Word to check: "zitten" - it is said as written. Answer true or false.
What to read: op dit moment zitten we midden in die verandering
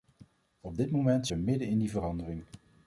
false